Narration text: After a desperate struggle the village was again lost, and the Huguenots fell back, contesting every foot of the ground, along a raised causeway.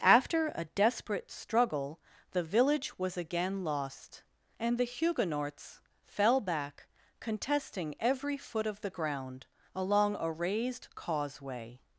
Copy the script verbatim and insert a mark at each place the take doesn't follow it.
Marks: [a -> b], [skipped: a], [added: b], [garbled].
After a desperate struggle the village was again lost, and the Huguenots fell back, contesting every foot of the ground, along a raised causeway.